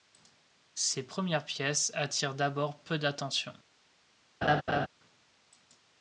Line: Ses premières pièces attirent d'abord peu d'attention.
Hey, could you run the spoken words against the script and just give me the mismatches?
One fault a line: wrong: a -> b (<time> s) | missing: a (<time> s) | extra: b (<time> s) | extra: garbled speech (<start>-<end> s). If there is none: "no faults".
no faults